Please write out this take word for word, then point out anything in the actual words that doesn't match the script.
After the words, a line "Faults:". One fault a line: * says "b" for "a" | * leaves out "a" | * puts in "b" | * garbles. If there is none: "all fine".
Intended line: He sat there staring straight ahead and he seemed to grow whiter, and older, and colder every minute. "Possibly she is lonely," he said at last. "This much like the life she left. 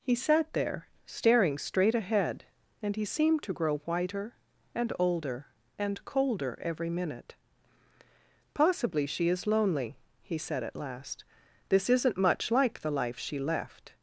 He sat there staring straight ahead and he seemed to grow whiter, and older, and colder every minute. "Possibly she is lonely," he said at last. "This isn't much like the life she left.
Faults:
* puts in "isn't"